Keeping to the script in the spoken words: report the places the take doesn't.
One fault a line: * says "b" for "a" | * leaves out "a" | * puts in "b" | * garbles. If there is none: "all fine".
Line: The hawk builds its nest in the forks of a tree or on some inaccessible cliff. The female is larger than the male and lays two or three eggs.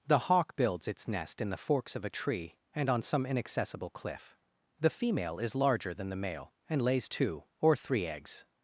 * says "and" for "or"